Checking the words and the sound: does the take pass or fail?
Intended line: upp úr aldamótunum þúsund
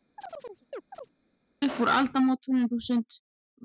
fail